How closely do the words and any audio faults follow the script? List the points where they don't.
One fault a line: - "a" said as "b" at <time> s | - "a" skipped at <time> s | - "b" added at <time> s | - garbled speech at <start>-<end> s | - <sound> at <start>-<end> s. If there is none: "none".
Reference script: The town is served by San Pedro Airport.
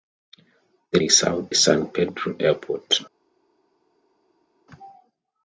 - "town" skipped at 1.0 s
- "by" skipped at 1.5 s